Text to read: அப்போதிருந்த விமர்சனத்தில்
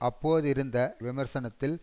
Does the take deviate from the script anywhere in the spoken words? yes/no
no